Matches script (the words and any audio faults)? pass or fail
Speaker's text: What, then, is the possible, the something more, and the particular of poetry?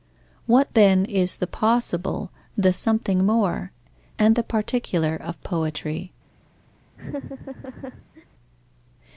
fail